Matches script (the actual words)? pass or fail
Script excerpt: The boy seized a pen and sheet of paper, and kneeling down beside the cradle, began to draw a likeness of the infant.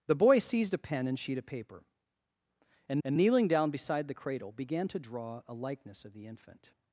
fail